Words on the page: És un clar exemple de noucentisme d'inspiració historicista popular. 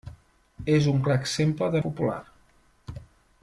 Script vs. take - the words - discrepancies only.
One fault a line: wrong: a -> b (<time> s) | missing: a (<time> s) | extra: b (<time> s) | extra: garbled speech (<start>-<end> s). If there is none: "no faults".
missing: noucentisme d'inspiració historicista (1.8 s)